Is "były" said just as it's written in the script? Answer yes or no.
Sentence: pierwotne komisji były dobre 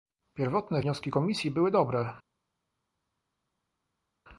yes